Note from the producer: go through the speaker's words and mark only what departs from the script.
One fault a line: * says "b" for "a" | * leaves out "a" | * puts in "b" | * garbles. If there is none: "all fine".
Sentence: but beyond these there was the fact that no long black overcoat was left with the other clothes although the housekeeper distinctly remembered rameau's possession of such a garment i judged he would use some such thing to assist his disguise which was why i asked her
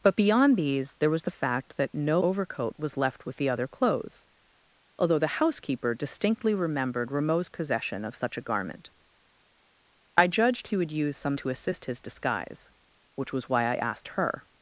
* leaves out "long black"
* leaves out "such thing"